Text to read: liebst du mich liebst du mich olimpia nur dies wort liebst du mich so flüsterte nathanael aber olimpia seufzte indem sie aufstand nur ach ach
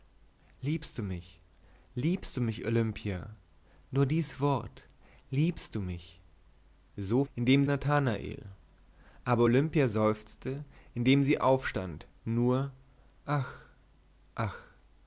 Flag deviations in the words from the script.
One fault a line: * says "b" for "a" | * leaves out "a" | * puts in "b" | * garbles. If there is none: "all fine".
* says "indem" for "flüsterte"